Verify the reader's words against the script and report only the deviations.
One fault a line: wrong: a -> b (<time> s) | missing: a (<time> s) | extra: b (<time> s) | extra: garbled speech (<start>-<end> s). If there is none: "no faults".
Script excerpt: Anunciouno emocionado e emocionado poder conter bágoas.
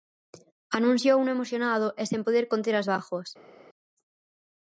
wrong: emocionado -> sen (2.1 s)
extra: as (2.8 s)